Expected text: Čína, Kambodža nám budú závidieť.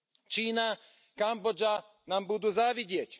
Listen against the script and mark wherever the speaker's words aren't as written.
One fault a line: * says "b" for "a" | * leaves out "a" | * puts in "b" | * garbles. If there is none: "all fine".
all fine